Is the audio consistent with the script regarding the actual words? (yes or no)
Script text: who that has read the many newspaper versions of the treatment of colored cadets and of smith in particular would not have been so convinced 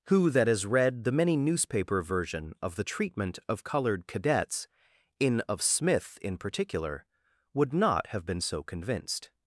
no